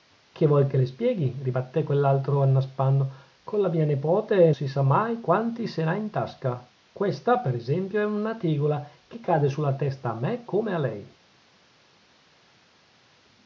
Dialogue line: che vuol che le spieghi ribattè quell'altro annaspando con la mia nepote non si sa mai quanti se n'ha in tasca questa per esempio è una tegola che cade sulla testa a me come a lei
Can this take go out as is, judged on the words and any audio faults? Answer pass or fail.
fail